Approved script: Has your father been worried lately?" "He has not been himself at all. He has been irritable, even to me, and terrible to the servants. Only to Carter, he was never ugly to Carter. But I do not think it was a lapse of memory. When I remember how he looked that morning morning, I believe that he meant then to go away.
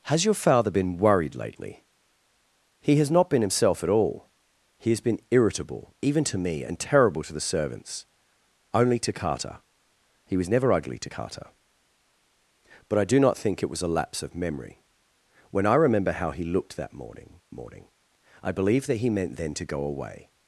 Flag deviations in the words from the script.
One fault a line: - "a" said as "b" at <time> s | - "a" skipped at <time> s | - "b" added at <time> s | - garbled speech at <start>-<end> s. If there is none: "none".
none